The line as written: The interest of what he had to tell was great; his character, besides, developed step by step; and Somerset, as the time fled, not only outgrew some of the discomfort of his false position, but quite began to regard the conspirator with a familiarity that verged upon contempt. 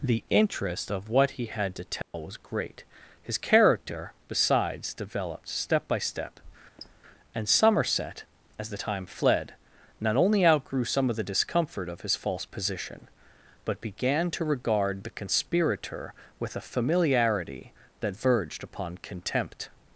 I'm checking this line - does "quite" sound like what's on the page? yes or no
no